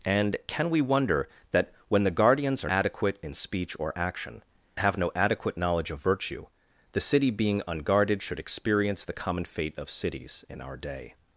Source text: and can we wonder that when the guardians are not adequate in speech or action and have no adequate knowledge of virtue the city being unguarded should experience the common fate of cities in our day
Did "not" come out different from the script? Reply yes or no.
yes